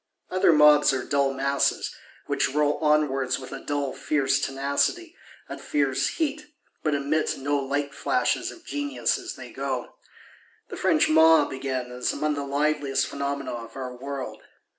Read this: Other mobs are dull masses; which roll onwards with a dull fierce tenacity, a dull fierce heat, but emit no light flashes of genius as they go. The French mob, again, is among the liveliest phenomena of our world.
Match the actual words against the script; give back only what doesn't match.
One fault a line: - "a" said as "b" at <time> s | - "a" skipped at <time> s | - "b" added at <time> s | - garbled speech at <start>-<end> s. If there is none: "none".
- "dull" skipped at 5.6 s